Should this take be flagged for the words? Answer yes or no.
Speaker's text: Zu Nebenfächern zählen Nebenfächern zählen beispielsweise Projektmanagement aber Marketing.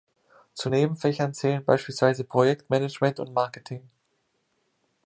yes